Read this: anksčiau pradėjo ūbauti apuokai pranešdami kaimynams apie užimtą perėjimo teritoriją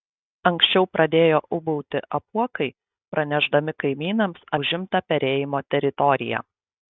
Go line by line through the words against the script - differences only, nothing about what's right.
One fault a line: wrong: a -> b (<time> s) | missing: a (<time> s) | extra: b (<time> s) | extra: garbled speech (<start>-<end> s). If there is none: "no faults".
missing: apie (4.5 s)